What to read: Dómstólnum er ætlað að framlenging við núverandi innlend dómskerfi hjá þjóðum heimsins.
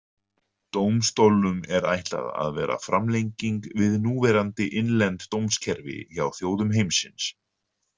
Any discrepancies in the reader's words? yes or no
yes